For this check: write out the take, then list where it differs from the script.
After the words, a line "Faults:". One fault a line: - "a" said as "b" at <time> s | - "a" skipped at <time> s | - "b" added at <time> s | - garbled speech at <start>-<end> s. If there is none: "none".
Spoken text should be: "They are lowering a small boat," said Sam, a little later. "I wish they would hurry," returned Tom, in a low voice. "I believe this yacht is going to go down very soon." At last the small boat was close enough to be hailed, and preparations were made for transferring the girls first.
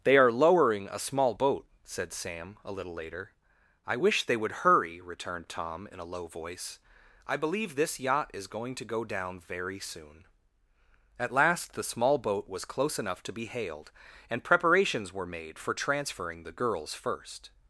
"They are lowering a small boat," said Sam, a little later. "I wish they would hurry," returned Tom, in a low voice. "I believe this yacht is going to go down very soon." At last the small boat was close enough to be hailed, and preparations were made for transferring the girls first.
Faults:
none